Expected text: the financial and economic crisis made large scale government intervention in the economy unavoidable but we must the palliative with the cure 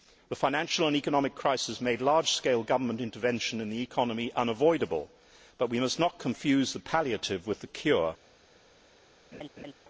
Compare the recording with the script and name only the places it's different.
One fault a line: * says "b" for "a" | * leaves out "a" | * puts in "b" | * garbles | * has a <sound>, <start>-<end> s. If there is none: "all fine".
* puts in "not confuse"
* has a laugh, 9.3-9.7 s